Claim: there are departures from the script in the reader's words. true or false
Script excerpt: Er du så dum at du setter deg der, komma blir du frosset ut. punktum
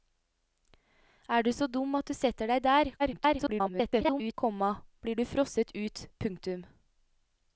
true